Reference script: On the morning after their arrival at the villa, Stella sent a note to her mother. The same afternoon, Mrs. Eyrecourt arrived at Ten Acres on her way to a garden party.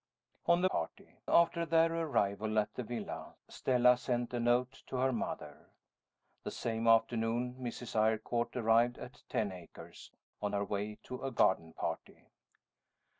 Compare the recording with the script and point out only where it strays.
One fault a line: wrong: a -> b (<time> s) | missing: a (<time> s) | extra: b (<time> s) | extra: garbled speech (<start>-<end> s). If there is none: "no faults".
wrong: morning -> party (0.6 s)